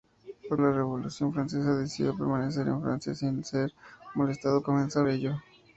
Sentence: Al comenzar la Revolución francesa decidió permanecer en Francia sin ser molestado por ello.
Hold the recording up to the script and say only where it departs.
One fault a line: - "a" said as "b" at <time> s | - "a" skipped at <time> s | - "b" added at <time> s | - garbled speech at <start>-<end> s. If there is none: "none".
- "comenzar" skipped at 0.6 s
- "por" said as "comenzar" at 4.6 s